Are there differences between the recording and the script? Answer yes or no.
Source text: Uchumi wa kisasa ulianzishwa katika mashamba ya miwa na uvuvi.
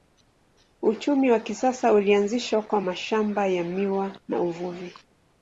yes